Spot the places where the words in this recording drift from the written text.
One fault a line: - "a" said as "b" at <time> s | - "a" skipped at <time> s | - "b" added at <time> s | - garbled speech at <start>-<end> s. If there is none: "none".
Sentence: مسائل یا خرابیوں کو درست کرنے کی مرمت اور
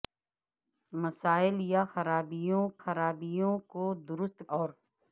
- "خرابیوں" added at 2.8 s
- "کرنے کی مرمت" skipped at 4.4 s